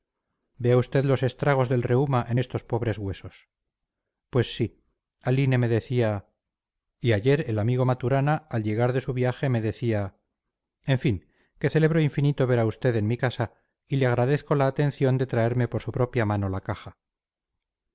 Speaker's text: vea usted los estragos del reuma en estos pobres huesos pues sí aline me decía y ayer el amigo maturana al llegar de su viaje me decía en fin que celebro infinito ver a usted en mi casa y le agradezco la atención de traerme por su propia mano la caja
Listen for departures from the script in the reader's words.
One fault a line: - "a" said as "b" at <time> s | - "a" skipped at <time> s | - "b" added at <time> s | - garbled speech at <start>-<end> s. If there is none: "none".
none